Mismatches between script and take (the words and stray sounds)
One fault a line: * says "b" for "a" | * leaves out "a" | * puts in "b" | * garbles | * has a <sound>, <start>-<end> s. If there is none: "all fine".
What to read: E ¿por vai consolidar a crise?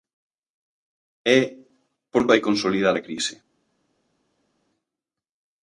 all fine